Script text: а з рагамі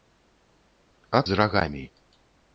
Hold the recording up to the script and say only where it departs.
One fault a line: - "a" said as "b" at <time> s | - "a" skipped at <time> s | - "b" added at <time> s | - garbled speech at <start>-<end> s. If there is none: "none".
none